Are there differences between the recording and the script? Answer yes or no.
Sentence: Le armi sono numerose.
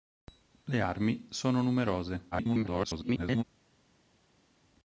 yes